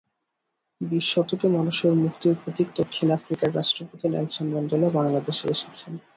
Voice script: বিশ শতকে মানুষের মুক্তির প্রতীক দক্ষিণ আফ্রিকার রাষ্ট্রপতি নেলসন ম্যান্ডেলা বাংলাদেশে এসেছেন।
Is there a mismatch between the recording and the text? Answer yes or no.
no